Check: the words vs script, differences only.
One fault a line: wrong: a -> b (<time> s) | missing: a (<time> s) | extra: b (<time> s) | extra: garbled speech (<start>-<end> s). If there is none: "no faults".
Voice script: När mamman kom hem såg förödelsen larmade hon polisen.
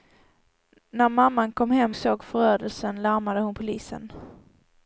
no faults